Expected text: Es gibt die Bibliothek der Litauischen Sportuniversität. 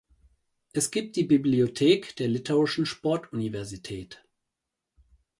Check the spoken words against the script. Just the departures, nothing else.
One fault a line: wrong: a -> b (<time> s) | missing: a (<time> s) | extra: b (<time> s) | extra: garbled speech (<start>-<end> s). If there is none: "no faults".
no faults